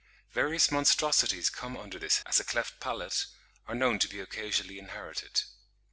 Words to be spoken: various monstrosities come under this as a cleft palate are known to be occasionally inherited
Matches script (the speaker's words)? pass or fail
pass